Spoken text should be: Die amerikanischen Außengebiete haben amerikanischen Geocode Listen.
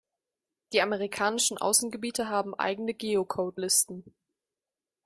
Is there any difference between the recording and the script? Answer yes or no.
yes